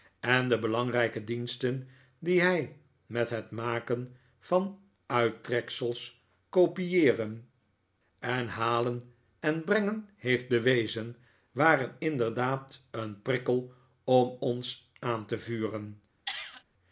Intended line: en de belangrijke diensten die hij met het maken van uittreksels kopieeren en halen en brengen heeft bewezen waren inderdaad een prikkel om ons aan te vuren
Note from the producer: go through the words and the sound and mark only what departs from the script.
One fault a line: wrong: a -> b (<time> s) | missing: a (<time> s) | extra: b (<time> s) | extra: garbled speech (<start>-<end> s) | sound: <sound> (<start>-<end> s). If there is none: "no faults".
sound: cough (16.3-16.6 s)